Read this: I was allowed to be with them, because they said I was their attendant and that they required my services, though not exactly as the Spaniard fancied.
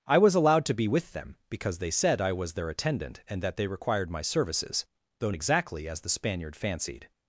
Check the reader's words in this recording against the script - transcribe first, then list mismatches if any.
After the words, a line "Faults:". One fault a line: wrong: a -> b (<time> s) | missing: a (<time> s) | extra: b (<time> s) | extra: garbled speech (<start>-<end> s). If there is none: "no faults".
I was allowed to be with them, because they said I was their attendant and that they required my services, though exactly as the Spaniard fancied.
Faults:
missing: not (5.3 s)